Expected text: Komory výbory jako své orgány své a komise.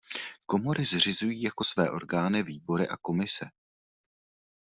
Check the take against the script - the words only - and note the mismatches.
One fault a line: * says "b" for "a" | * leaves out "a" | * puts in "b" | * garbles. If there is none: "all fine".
* says "zřizují" for "výbory"
* says "výbory" for "své"